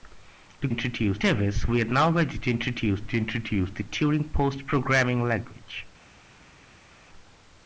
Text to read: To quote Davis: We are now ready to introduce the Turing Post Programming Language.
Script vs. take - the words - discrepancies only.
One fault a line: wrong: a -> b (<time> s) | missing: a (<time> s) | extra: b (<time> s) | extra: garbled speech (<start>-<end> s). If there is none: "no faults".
wrong: quote -> introduce (0.7 s)
extra: to introduce (3.0 s)